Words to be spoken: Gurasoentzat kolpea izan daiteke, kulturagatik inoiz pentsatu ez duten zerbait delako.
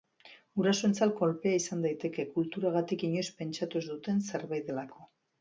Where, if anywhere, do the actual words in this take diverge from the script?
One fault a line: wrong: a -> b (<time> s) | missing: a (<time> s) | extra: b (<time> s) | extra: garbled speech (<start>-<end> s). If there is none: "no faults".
no faults